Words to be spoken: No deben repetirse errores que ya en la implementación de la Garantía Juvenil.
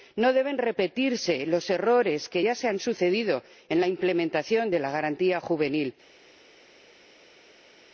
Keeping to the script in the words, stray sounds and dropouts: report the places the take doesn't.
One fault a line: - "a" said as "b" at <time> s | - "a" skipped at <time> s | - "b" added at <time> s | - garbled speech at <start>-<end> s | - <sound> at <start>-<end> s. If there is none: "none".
- "los" added at 1.4 s
- "se han sucedido" added at 2.5 s